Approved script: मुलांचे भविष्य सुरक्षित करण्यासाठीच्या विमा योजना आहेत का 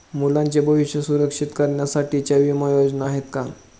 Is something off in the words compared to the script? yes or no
no